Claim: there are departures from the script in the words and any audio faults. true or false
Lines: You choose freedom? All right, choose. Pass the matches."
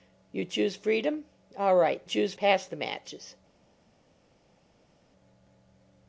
false